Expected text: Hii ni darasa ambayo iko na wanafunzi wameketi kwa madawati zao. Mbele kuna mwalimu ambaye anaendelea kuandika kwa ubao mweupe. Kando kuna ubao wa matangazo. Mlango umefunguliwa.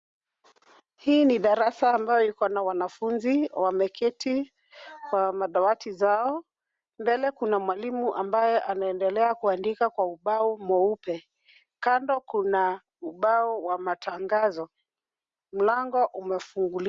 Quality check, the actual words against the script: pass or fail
pass